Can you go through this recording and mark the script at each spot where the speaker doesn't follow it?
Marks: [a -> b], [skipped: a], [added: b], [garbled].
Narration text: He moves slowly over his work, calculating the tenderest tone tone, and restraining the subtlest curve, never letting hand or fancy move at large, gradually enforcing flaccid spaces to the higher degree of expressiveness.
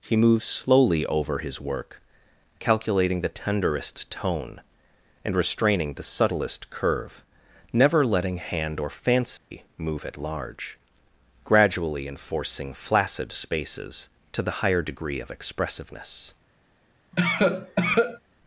He moves slowly over his work, calculating the tenderest tone [skipped: tone,] and restraining the subtlest curve, never letting hand or fancy move at large, gradually enforcing flaccid spaces to the higher degree of expressiveness.